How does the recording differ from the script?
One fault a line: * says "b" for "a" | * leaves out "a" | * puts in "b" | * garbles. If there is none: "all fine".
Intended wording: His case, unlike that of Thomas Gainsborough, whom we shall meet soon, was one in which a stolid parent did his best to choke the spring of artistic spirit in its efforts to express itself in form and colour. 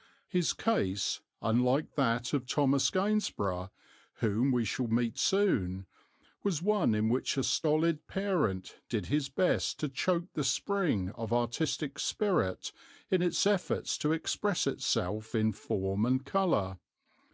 all fine